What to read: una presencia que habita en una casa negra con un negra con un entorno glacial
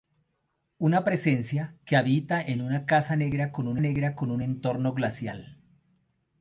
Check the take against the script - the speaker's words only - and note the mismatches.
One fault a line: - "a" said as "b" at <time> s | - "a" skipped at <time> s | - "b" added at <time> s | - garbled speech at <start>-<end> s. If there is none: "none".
none